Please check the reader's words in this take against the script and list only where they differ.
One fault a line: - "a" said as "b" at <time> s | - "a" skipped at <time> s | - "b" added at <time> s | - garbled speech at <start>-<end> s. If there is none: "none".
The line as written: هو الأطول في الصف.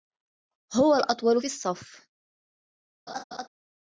- "في" skipped at 1.4 s